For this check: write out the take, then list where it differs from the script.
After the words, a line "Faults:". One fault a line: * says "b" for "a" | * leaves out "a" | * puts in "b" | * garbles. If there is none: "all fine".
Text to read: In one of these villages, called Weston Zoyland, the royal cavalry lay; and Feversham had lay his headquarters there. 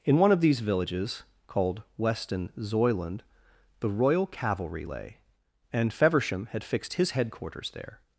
In one of these villages, called Weston Zoyland, the royal cavalry lay; and Feversham had fixed his headquarters there.
Faults:
* says "fixed" for "lay"